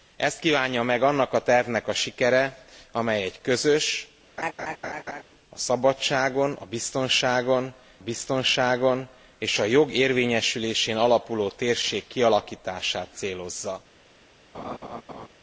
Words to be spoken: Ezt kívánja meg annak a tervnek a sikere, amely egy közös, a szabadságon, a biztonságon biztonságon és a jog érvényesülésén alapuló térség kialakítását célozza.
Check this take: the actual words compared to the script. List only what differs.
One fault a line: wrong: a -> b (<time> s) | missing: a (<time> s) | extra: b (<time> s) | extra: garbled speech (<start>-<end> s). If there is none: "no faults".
no faults